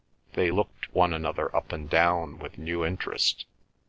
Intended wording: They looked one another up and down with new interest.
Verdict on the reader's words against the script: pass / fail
pass